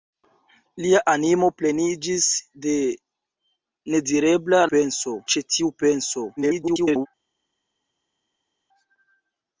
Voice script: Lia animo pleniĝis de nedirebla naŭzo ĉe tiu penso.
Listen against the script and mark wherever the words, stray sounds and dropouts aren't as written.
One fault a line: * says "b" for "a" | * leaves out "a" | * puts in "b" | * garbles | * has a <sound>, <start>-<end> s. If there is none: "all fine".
* says "penso" for "naŭzo"
* garbles